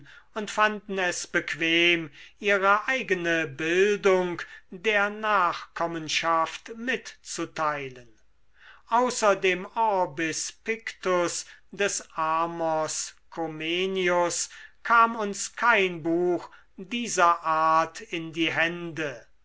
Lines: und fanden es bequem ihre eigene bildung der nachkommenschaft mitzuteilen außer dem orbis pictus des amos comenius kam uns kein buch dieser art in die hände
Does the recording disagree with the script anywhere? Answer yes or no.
no